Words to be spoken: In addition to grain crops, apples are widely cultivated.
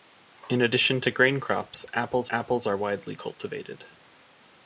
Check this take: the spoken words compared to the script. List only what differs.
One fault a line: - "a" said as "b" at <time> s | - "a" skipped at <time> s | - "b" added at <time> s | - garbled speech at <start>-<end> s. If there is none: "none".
- "apples" added at 2.3 s